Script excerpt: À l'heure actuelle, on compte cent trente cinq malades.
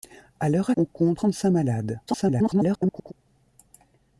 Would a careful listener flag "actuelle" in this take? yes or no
yes